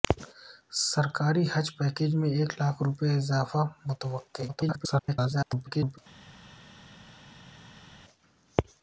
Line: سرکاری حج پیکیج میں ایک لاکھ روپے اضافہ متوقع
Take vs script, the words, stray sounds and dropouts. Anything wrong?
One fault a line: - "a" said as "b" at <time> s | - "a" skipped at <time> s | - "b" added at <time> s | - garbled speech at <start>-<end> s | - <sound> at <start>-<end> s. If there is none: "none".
- garbled speech at 4.5-6.0 s